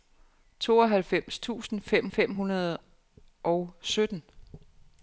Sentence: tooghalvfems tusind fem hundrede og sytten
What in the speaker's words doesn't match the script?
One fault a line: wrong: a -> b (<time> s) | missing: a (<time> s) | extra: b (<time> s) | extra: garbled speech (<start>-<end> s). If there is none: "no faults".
extra: fem (2.1 s)